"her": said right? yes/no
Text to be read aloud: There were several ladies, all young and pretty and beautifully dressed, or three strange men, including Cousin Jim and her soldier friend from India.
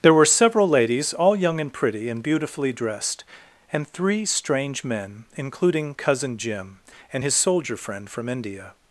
no